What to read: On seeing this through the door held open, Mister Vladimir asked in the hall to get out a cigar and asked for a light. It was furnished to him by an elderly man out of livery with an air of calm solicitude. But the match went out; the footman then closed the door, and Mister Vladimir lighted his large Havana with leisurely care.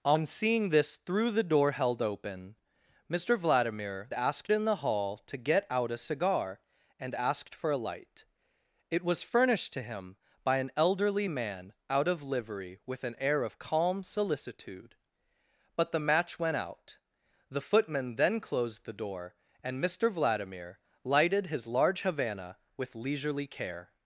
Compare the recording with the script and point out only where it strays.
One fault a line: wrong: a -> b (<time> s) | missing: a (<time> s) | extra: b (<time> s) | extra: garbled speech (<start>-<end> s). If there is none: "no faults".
no faults